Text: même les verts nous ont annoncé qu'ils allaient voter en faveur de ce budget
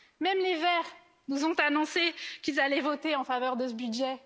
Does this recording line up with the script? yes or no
yes